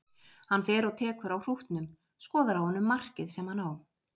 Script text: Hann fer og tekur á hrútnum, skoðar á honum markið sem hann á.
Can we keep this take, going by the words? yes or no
yes